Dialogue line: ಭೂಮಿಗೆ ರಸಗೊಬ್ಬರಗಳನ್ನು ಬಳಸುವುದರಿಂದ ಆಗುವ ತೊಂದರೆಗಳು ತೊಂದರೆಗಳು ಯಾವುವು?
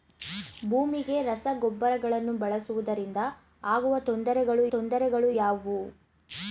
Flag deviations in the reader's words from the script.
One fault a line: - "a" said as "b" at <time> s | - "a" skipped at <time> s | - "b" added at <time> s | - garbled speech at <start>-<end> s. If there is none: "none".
none